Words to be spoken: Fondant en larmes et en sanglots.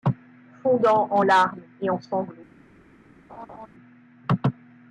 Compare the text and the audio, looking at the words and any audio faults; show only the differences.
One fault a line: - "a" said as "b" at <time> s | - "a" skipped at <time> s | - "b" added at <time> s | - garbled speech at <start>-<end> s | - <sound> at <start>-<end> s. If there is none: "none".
- laugh at 3.3-3.7 s